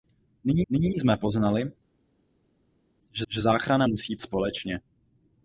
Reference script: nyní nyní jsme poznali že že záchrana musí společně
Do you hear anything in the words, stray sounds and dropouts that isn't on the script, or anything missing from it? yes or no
no